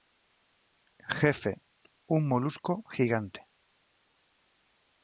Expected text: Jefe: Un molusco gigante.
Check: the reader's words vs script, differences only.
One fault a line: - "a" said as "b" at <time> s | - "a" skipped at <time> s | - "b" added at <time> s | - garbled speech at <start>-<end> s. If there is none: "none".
none